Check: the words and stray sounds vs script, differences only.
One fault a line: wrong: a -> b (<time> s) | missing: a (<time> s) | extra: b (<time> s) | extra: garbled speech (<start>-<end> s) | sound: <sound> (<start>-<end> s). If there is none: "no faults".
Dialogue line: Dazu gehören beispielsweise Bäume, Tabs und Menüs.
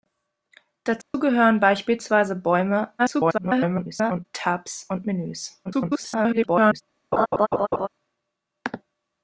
sound: dropout (1.0-1.1 s)
extra: garbled speech (3.0-4.3 s)
extra: garbled speech (5.6-6.8 s)
sound: laugh (7.1-7.9 s)